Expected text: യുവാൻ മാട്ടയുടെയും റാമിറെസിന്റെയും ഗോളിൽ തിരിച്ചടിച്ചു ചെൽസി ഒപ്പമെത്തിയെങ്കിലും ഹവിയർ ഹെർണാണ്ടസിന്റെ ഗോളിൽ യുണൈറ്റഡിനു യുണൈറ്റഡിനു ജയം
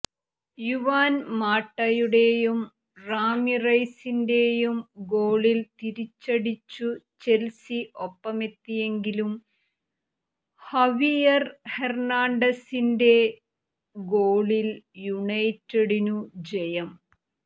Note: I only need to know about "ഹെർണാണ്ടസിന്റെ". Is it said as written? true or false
true